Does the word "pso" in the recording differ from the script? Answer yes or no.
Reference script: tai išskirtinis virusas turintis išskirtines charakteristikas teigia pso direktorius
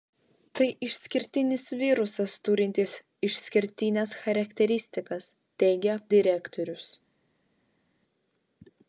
yes